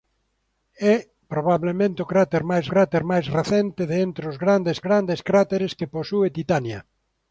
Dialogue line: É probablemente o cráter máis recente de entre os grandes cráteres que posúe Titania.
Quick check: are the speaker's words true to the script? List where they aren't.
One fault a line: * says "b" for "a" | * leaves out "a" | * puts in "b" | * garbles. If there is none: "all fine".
* puts in "cráter máis"
* puts in "grandes"